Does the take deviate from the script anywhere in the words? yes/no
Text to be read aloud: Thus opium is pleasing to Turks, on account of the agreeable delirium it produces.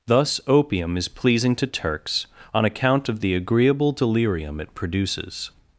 no